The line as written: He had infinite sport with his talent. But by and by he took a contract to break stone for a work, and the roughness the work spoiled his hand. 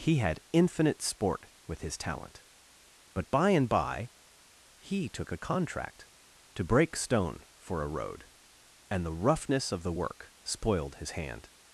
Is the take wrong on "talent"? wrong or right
right